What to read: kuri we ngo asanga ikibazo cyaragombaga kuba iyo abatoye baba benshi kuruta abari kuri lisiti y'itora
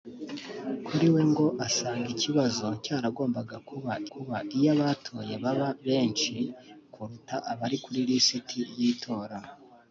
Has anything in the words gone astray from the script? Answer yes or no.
yes